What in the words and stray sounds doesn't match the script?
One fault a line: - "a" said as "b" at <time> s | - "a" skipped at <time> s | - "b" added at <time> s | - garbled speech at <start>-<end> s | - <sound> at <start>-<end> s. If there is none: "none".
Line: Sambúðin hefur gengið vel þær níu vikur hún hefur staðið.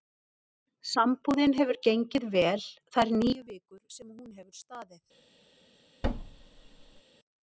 - "sem" added at 4.0 s
- thud at 6.0-7.0 s